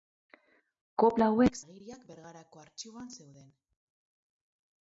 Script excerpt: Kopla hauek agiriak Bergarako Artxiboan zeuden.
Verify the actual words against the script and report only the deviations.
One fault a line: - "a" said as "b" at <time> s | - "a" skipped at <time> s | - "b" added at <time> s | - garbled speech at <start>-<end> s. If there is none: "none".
none